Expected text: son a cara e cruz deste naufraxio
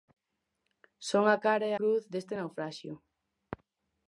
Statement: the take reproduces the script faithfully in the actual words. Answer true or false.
true